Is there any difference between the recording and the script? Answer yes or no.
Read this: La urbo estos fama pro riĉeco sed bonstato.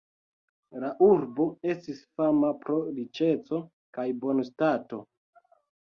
yes